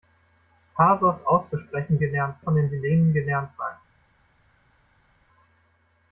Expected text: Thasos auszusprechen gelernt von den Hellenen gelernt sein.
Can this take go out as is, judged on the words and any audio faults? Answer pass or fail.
pass